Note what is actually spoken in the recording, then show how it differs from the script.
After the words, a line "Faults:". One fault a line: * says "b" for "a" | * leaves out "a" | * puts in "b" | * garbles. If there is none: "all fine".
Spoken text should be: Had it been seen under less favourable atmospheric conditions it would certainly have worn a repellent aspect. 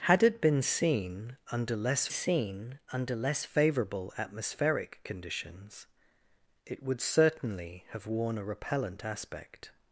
Had it been seen under less seen under less favourable atmospheric conditions it would certainly have worn a repellent aspect.
Faults:
* puts in "seen under less"